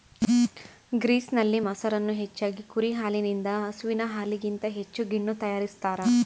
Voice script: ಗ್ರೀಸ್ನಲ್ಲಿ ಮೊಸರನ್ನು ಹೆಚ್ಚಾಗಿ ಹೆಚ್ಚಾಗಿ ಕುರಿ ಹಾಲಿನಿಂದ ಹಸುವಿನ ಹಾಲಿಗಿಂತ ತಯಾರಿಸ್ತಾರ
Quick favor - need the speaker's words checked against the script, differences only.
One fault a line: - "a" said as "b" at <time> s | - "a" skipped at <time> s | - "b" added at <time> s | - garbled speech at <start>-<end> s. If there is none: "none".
- "ಹೆಚ್ಚಾಗಿ" skipped at 2.6 s
- "ಹೆಚ್ಚು ಗಿಣ್ಣು" added at 4.8 s